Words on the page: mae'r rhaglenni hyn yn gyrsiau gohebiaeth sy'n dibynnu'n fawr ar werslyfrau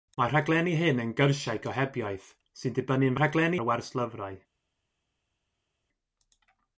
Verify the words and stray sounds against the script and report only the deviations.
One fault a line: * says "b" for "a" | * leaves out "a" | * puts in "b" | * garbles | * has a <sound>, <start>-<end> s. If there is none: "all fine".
* says "rhaglenni" for "fawr"